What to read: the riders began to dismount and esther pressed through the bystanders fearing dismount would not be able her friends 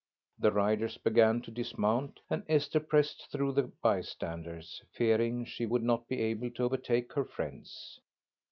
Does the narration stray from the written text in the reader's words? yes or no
yes